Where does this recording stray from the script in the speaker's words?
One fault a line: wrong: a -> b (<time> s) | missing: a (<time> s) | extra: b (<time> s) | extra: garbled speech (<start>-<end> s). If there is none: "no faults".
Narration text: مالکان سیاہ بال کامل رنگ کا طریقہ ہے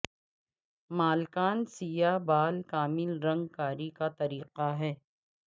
extra: کاری (3.6 s)